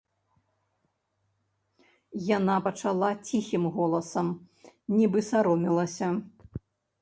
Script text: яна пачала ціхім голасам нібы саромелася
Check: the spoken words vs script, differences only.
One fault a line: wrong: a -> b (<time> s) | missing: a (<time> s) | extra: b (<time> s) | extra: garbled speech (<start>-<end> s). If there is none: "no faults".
no faults